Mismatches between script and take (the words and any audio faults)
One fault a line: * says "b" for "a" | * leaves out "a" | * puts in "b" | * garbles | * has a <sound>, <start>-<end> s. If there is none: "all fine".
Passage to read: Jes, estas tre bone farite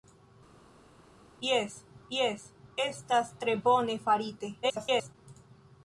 * puts in "jes"
* garbles